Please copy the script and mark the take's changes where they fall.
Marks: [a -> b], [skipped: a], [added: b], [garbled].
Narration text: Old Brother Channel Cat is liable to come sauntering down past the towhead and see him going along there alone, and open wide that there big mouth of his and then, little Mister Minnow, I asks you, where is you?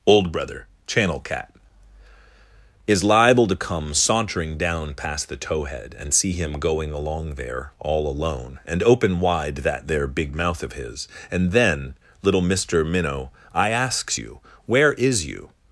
Old Brother Channel Cat is liable to come sauntering down past the towhead and see him going along there [added: all] alone, and open wide that there big mouth of his and then, little Mister Minnow, I asks you, where is you?